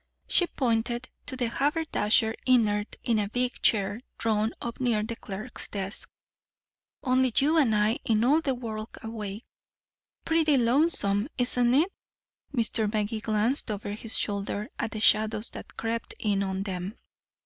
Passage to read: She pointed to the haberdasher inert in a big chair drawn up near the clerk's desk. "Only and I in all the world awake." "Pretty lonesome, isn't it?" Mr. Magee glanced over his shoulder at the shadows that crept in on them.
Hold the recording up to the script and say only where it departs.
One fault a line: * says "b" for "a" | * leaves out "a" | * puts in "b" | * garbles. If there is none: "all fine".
* puts in "you"